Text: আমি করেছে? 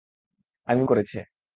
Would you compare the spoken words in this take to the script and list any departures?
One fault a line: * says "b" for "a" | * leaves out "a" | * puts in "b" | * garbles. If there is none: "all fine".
all fine